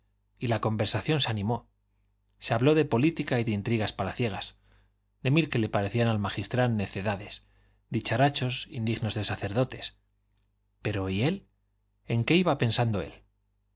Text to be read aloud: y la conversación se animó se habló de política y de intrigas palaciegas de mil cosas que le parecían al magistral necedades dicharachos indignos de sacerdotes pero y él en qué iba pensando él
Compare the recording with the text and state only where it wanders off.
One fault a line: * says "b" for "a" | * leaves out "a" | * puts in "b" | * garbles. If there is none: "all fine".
* leaves out "cosas"